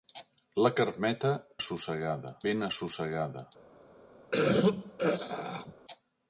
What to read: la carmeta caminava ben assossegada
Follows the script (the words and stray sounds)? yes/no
no